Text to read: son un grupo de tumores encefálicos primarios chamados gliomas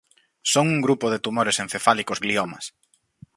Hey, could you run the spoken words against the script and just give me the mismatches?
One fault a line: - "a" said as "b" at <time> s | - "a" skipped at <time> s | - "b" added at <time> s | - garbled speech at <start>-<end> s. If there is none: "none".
- "primarios chamados" skipped at 2.2 s